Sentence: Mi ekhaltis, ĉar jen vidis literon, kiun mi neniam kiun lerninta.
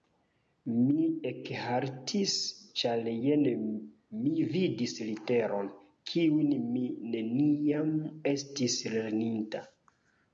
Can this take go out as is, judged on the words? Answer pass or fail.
fail